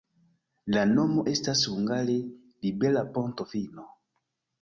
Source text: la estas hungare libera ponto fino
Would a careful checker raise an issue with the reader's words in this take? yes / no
yes